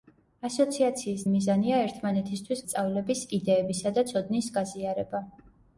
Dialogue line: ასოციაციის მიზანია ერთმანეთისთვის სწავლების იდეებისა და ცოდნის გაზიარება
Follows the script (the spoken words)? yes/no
yes